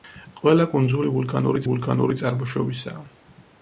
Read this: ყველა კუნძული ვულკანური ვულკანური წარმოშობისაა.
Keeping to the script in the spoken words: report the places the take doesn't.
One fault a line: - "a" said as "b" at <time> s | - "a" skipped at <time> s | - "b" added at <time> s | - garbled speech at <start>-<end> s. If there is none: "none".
none